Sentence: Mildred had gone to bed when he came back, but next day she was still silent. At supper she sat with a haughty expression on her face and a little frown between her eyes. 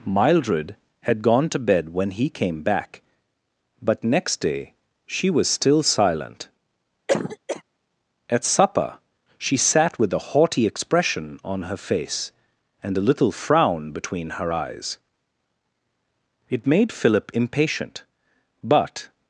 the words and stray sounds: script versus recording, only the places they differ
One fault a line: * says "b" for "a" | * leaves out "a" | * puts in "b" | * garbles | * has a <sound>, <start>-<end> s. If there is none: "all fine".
* has a cough, 7.1-7.6 s
* puts in "It made Philip impatient but"